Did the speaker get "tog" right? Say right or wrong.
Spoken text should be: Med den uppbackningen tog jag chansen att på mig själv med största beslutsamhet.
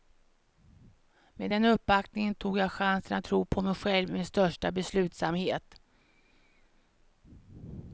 right